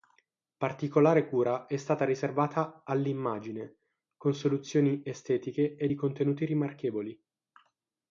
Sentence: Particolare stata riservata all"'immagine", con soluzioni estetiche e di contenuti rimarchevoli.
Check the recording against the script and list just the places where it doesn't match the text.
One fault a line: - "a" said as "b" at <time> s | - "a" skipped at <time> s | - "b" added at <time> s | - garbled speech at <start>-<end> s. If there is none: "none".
- "cura è" added at 1.3 s